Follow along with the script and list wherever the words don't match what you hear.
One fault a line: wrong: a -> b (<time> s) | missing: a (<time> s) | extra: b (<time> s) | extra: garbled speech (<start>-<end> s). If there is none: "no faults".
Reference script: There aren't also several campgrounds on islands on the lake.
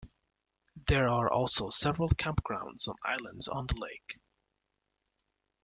wrong: aren't -> are (1.1 s)